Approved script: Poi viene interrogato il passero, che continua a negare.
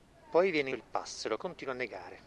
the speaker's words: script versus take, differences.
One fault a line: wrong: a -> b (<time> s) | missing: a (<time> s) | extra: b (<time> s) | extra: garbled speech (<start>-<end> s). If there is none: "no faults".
missing: interrogato (0.7 s)
missing: che (1.4 s)